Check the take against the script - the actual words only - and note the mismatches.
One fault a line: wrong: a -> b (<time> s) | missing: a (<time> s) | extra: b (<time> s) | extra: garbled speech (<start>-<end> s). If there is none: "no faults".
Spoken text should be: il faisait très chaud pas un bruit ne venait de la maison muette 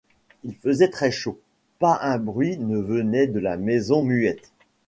no faults